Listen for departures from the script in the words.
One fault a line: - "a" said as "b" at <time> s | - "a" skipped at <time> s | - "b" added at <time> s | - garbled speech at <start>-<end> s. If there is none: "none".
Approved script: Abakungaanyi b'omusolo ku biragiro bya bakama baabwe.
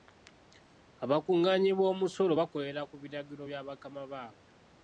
- "bakolera" added at 2.4 s